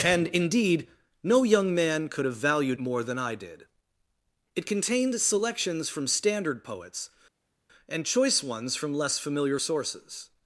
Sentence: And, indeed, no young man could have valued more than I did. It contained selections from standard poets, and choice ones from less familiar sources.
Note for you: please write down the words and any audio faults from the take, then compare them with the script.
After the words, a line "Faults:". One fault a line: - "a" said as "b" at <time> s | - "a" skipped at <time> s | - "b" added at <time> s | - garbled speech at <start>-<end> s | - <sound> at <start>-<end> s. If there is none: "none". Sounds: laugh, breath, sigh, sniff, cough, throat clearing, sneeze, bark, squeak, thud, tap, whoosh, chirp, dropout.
And, indeed, no young man could have valued more than I did. It contained selections from standard poets, and choice ones from less familiar sources.
Faults:
none